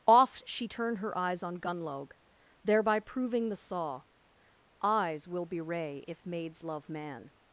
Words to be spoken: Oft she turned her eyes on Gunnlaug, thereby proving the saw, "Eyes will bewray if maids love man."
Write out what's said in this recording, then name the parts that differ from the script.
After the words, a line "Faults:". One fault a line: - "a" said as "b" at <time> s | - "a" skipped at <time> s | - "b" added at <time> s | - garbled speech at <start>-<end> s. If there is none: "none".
Oft she turned her eyes on Gunnlaug, thereby proving the saw, "Eyes will bewray if maids love man."
Faults:
none